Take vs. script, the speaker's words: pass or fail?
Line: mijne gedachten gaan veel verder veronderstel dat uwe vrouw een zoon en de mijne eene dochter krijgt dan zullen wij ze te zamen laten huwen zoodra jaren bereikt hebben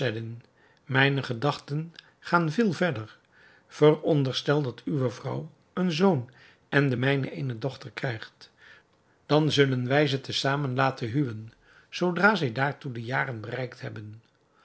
fail